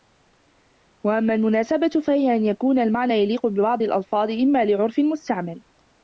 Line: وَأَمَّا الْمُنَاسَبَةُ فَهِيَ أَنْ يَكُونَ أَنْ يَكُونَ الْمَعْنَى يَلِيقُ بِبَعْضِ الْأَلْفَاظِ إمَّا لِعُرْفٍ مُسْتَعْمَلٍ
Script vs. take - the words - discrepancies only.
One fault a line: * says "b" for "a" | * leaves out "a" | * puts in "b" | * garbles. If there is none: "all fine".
* leaves out "أَنْ يَكُونَ"